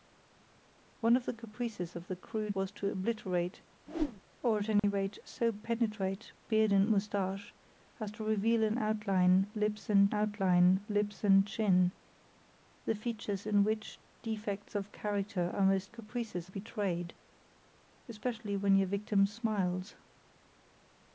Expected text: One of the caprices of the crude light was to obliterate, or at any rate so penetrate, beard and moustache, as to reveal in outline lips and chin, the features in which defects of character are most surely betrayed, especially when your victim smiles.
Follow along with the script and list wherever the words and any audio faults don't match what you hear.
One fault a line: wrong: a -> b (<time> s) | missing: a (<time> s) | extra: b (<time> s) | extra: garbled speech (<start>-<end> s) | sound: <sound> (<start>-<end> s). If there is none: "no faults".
missing: light (2.6 s)
sound: whoosh (3.9-4.2 s)
sound: dropout (4.8-4.8 s)
extra: outline lips and (10.1 s)
wrong: surely -> caprices (15.9 s)